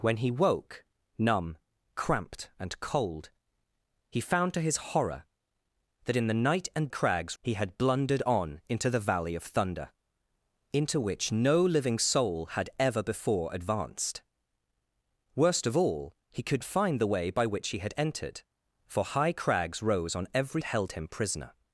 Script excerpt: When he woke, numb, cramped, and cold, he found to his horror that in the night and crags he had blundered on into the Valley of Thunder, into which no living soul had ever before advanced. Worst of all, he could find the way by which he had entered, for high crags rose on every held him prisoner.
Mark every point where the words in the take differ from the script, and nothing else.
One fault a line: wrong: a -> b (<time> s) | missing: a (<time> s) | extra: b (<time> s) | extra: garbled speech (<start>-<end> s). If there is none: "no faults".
no faults